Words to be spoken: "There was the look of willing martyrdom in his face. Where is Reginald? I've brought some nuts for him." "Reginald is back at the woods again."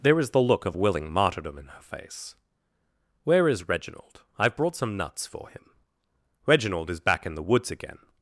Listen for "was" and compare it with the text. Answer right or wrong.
wrong